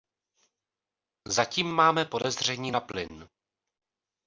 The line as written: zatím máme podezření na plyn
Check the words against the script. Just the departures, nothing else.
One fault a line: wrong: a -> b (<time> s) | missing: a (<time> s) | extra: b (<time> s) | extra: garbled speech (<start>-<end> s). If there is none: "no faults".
no faults